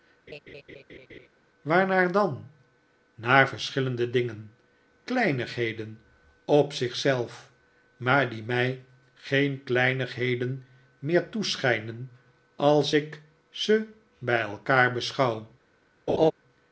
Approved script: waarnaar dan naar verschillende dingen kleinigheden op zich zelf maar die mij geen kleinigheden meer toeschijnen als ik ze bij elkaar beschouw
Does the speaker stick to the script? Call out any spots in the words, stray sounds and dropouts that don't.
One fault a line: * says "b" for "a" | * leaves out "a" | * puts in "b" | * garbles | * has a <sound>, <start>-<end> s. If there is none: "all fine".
* has a laugh, 0.3-1.3 s
* has a laugh, 16.1-16.3 s